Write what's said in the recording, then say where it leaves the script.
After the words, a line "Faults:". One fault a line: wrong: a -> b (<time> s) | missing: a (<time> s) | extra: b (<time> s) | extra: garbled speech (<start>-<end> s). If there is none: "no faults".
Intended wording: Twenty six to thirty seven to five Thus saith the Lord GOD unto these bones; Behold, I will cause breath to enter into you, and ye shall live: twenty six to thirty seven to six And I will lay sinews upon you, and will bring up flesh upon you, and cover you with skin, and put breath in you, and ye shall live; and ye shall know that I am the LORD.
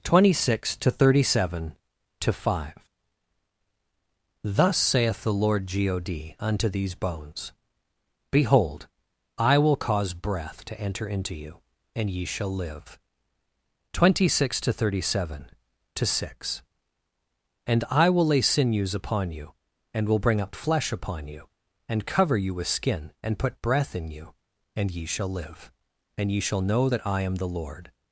Twenty six to thirty seven to five Thus saith the Lord GOD unto these bones; Behold, I will cause breath to enter into you, and ye shall live: twenty six to thirty seven to six And I will lay sinews upon you, and will bring up flesh upon you, and cover you with skin, and put breath in you, and ye shall live; and ye shall know that I am the LORD.
Faults:
no faults